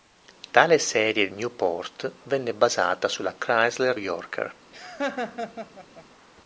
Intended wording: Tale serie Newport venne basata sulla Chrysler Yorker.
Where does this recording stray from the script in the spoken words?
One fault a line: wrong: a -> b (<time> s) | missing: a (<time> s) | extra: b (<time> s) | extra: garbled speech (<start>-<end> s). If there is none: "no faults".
no faults